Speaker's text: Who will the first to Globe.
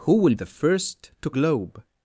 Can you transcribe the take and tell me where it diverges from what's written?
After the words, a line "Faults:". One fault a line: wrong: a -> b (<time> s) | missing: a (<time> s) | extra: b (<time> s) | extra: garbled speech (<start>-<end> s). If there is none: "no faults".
Who will the first to Globe.
Faults:
no faults